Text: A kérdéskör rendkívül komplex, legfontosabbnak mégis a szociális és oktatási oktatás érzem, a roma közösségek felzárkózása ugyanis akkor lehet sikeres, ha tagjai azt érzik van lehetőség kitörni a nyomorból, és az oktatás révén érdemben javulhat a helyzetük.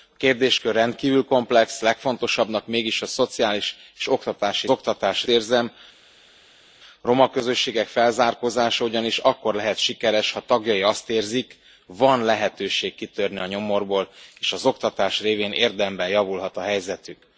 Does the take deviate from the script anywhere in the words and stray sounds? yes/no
no